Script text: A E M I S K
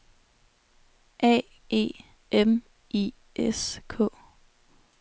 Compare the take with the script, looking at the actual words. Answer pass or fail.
pass